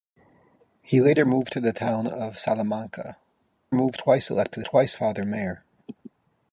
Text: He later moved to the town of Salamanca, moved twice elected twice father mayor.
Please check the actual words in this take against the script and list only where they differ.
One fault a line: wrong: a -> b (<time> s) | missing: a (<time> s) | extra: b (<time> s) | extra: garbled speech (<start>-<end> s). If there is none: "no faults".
no faults